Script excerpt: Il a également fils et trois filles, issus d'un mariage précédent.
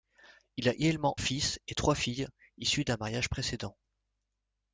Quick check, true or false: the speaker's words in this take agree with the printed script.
true